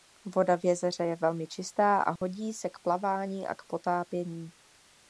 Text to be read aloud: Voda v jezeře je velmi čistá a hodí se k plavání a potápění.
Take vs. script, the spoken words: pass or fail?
fail